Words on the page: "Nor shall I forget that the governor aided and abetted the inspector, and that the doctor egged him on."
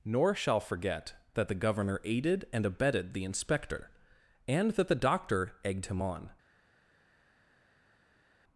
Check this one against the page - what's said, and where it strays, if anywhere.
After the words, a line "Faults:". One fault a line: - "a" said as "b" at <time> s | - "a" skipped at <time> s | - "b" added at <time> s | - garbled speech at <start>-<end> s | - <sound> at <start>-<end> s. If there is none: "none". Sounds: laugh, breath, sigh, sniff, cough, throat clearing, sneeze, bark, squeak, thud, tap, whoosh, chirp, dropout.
"Nor shall forget that the governor aided and abetted the inspector, and that the doctor egged him on."
Faults:
- "I" skipped at 0.6 s